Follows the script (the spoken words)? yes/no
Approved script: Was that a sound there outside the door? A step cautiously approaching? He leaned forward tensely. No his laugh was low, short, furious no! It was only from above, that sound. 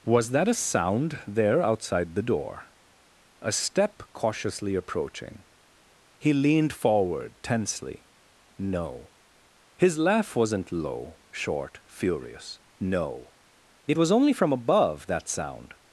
no